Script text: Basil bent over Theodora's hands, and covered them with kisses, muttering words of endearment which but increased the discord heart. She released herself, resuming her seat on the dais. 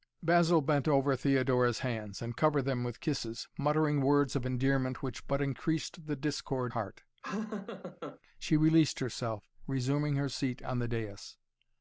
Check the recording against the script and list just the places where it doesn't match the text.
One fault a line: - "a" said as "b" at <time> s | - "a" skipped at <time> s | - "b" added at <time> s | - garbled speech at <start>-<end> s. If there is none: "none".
none